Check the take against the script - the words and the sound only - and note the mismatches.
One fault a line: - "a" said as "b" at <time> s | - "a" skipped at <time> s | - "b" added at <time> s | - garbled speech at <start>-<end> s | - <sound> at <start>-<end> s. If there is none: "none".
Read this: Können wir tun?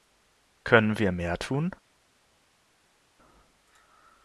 - "mehr" added at 1.1 s